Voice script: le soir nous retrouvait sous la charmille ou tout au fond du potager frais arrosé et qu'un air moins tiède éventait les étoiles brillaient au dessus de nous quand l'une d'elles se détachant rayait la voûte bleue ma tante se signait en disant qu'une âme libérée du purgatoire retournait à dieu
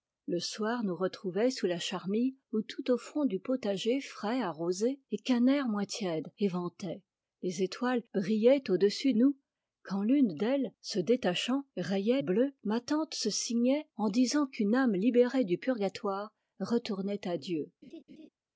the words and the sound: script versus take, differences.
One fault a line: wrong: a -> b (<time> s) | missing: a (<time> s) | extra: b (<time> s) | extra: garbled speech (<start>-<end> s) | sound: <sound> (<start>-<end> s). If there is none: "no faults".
missing: de (9.1 s)
missing: la voûte (12.2 s)
sound: laugh (17.8-18.3 s)